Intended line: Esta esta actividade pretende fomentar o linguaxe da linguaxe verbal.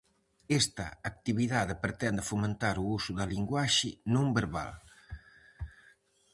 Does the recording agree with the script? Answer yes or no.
no